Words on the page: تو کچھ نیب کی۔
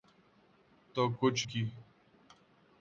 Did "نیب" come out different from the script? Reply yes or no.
yes